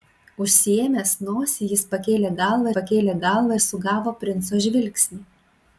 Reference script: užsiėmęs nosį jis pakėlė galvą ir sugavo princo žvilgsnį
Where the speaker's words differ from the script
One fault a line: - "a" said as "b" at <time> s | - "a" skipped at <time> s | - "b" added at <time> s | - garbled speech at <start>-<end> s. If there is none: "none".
- "pakėlė galvą" added at 2.7 s